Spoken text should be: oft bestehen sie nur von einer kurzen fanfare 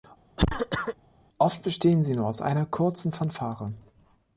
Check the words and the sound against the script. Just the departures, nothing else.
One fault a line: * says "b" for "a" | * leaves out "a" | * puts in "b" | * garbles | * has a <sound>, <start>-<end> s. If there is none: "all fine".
* has a cough, 0.4-1.0 s
* says "aus" for "von"